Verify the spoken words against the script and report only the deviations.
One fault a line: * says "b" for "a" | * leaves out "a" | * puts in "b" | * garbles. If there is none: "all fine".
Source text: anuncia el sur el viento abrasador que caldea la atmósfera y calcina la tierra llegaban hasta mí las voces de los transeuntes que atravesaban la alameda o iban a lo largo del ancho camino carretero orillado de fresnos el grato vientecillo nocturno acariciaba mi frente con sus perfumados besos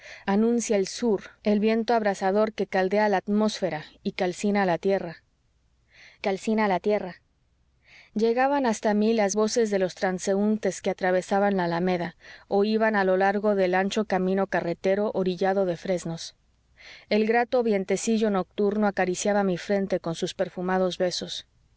* puts in "calcina la tierra"